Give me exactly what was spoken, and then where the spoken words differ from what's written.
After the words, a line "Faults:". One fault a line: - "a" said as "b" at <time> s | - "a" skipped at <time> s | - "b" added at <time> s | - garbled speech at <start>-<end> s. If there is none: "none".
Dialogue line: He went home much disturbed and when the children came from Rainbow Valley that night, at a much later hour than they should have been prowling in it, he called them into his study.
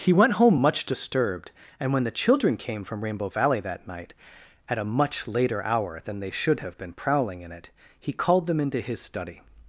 He went home much disturbed and when the children came from Rainbow Valley that night, at a much later hour than they should have been prowling in it, he called them into his study.
Faults:
none